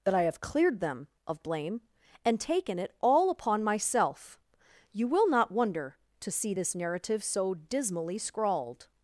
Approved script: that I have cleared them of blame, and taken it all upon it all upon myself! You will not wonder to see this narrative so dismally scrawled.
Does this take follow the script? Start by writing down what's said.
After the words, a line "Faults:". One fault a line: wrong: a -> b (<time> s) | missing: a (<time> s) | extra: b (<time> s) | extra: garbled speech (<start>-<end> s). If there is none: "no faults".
that I have cleared them of blame, and taken it all upon myself! You will not wonder to see this narrative so dismally scrawled.
Faults:
missing: it all upon (3.6 s)